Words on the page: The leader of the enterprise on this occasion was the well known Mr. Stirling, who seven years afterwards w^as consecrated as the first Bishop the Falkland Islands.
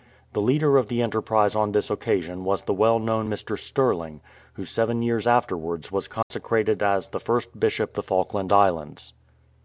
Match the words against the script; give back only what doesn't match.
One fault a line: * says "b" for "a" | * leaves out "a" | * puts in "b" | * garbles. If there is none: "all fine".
all fine